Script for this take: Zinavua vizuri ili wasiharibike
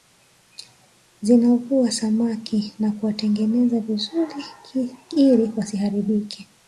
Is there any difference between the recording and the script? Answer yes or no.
yes